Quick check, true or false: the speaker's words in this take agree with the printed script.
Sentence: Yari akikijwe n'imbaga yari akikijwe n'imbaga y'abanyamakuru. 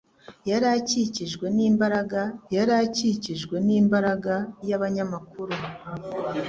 true